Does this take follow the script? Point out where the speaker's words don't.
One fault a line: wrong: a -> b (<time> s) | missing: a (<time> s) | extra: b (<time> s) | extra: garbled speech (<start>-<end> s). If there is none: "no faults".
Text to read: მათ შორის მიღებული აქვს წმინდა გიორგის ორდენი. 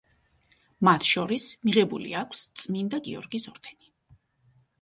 no faults